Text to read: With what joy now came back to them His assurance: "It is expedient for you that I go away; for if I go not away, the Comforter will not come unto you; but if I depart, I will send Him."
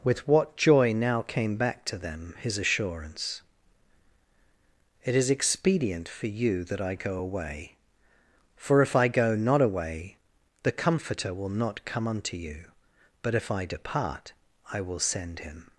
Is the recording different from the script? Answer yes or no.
no